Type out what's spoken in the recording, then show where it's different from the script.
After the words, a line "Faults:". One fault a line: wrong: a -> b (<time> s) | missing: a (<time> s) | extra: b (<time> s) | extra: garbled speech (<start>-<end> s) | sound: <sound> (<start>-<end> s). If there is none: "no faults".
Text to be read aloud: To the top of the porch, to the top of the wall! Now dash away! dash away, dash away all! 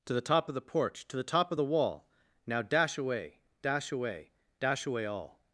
To the top of the porch, to the top of the wall! Now dash away! dash away, dash away all!
Faults:
no faults